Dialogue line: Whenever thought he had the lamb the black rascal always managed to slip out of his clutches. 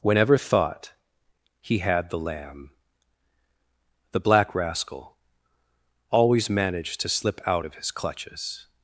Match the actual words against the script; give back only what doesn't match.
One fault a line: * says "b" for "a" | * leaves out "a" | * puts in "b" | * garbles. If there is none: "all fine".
all fine